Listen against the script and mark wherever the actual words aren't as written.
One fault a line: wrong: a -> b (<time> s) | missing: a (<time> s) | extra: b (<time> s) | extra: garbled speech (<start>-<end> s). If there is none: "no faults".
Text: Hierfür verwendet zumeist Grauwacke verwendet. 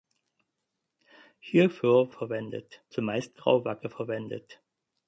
no faults